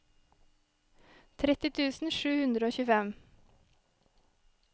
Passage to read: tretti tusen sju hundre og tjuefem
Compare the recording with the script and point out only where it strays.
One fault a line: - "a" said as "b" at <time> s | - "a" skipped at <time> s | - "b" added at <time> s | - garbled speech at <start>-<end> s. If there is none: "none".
none